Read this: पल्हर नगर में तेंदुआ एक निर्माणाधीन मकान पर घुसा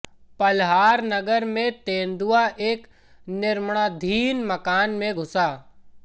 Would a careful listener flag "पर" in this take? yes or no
yes